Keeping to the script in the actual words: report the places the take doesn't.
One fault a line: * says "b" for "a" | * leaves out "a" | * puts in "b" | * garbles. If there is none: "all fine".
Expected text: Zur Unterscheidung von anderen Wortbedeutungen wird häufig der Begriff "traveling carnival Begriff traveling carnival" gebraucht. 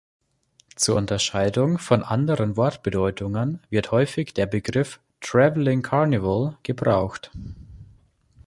* leaves out "Begriff traveling carnival"